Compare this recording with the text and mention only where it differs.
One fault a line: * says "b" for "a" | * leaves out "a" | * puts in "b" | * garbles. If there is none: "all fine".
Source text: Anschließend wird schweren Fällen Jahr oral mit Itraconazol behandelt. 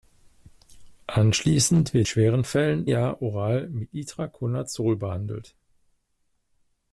all fine